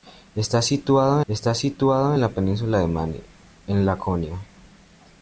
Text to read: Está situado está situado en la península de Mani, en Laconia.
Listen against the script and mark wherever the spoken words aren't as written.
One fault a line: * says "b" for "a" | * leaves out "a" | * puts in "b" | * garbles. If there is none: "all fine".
all fine